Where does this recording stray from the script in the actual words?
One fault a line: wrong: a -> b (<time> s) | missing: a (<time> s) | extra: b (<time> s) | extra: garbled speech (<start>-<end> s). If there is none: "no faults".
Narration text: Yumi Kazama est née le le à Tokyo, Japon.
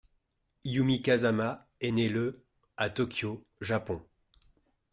missing: le (2.5 s)